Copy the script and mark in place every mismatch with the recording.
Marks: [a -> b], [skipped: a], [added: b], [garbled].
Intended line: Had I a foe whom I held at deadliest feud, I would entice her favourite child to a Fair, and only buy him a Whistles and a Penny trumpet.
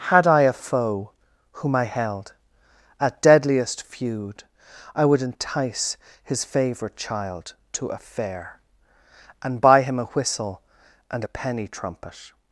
Had I a foe whom I held at deadliest feud, I would entice [her -> his] favourite child to a Fair, and [skipped: only] buy him a [Whistles -> Whistle] and a Penny trumpet.